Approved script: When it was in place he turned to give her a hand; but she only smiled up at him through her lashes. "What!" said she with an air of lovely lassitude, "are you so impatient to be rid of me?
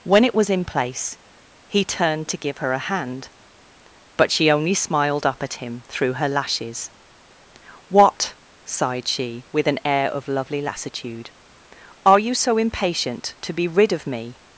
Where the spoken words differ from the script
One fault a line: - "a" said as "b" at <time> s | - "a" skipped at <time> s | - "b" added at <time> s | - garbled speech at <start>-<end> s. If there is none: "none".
- "said" said as "sighed" at 8.6 s